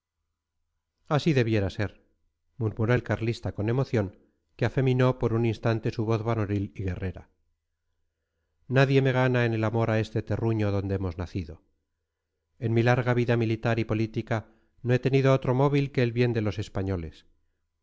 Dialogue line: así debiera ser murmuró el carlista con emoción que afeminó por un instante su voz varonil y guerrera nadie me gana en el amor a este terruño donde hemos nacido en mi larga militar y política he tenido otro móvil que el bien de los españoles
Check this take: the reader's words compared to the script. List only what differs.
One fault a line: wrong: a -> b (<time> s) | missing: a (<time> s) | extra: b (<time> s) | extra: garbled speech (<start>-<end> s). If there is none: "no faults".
extra: vida (13.2 s)
extra: no (14.8 s)